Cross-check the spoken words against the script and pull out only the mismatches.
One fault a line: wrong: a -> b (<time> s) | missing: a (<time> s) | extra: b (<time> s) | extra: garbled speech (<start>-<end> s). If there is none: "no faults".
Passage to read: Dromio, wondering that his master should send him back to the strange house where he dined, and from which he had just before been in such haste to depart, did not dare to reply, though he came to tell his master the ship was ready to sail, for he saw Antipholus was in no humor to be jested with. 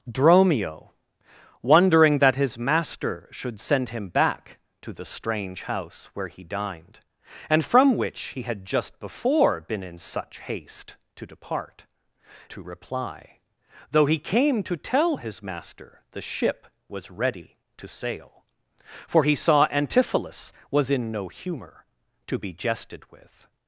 missing: did not dare (11.8 s)